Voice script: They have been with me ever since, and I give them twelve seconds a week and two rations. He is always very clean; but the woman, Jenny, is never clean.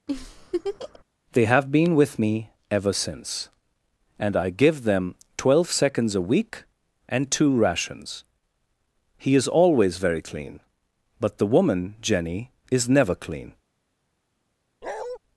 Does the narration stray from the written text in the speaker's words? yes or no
no